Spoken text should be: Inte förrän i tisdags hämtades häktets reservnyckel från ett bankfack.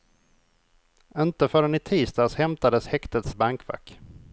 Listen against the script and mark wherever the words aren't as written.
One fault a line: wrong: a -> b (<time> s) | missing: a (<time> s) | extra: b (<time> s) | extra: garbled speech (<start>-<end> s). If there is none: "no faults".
missing: reservnyckel från ett (3.3 s)